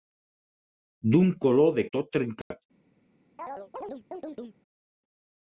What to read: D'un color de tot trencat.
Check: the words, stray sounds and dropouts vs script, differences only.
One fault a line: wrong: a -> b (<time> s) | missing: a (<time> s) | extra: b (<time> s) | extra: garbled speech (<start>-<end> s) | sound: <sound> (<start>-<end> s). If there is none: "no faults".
sound: dropout (2.4-2.5 s)
sound: chirp (3.4-4.6 s)